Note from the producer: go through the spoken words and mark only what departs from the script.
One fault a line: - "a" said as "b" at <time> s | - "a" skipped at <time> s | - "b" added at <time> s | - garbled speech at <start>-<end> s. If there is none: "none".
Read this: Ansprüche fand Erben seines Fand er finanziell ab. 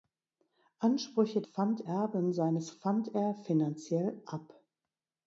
none